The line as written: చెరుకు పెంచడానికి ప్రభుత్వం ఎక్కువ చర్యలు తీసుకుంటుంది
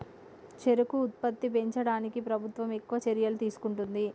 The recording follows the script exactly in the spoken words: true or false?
false